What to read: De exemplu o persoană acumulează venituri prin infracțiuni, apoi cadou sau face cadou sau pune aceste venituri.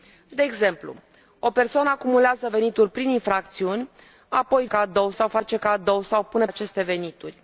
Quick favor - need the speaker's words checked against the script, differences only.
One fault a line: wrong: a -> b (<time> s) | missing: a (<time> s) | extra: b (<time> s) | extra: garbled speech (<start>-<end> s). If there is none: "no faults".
no faults